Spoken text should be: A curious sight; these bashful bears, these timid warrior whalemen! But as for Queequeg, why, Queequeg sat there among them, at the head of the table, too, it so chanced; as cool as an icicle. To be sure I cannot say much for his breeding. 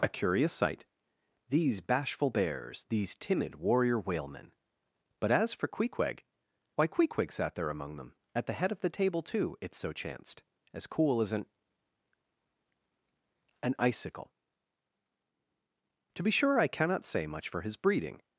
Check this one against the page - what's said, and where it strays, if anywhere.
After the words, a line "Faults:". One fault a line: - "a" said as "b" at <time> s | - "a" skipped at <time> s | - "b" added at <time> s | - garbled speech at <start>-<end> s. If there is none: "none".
A curious sight; these bashful bears, these timid warrior whalemen! But as for Queequeg, why, Queequeg sat there among them, at the head of the table, too, it so chanced; as cool as an an icicle. To be sure I cannot say much for his breeding.
Faults:
- "an" added at 13.6 s